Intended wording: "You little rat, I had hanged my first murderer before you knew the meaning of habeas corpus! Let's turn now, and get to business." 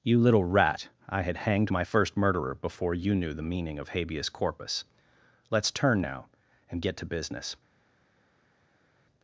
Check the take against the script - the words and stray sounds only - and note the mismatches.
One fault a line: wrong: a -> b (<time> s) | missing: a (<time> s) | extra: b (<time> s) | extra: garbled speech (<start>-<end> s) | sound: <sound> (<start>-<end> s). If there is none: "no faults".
no faults